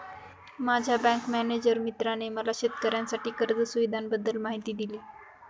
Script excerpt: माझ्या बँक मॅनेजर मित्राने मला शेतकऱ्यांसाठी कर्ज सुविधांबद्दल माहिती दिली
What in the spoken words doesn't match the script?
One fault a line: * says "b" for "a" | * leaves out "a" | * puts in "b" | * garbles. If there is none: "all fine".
all fine